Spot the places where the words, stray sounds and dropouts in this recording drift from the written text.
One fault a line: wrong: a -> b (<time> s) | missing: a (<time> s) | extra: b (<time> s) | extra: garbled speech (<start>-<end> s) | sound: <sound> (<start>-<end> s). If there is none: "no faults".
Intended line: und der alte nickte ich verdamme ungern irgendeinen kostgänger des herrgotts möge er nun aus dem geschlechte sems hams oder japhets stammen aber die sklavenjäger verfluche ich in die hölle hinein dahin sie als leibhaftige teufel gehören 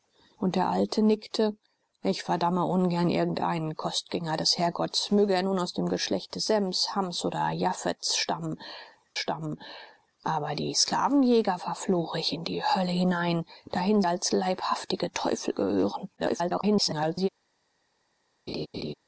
extra: stammen (9.2 s)
missing: sie (14.0 s)
extra: garbled speech (16.2-17.3 s)
sound: laugh (18.5-18.9 s)